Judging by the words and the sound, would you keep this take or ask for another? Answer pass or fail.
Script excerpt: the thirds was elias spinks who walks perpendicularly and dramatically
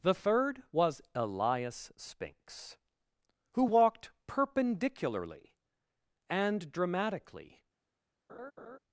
fail